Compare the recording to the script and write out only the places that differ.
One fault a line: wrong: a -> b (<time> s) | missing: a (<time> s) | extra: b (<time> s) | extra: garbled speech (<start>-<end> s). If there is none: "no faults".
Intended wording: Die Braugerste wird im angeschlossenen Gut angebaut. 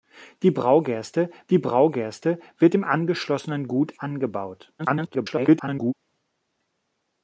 extra: die Braugerste (1.5 s)
extra: garbled speech (4.8-5.9 s)